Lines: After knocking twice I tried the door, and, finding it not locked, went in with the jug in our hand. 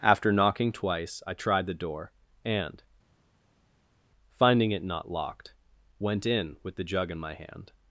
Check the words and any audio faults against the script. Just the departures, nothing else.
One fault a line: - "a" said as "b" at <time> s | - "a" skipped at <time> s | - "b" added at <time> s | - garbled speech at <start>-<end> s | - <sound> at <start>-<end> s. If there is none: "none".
- "our" said as "my" at 7.2 s